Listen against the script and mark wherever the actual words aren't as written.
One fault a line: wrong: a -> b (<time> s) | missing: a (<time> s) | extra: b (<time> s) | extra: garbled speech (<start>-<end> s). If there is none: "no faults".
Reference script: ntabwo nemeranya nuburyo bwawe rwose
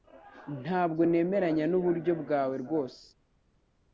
no faults